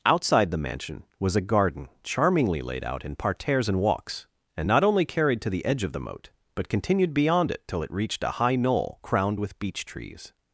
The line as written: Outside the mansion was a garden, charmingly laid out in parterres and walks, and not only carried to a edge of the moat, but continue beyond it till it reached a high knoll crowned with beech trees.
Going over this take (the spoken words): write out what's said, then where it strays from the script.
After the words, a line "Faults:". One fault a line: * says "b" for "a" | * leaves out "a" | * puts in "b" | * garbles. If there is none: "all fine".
Outside the mansion was a garden, charmingly laid out in parterres and walks, and not only carried to the edge of the moat, but continued beyond it till it reached a high knoll crowned with beech trees.
Faults:
* says "the" for "a"
* says "continued" for "continue"